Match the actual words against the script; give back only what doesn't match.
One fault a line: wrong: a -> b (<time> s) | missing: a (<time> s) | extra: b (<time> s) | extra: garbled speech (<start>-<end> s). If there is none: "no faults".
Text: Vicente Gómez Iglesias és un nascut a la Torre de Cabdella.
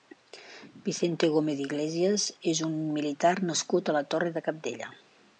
extra: militar (3.0 s)